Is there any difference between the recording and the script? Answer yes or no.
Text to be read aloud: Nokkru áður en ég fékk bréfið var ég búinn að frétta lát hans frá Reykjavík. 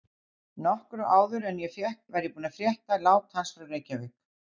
yes